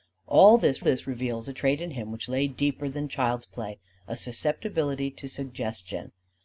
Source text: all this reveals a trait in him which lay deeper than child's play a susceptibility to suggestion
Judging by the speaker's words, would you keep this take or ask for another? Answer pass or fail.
fail